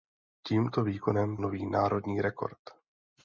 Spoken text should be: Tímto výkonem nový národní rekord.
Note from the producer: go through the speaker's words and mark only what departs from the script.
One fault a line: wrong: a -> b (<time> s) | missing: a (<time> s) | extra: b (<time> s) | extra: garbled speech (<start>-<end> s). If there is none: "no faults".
no faults